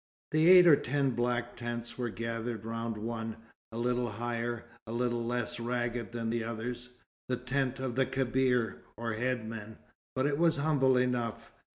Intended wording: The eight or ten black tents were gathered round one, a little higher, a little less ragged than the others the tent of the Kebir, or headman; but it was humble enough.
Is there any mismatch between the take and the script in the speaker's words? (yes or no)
no